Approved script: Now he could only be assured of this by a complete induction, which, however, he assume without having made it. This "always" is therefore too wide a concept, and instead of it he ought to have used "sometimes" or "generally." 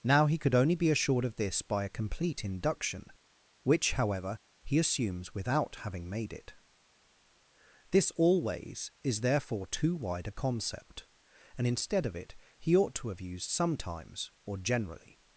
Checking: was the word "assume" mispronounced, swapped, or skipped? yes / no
yes